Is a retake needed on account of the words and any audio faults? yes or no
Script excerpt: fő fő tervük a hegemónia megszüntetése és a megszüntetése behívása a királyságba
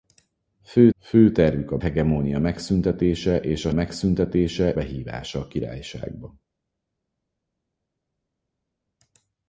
no